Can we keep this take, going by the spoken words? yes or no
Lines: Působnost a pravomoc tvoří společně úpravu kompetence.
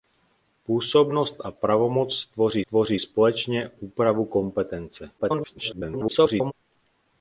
no